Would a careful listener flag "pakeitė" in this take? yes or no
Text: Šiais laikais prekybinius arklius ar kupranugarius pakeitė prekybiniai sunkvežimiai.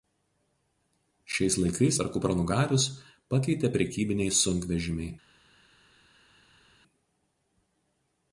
no